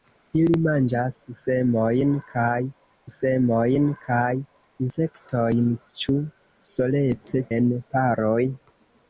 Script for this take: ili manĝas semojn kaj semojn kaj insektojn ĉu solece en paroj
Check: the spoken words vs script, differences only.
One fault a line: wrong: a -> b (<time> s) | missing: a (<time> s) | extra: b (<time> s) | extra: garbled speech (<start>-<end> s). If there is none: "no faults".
no faults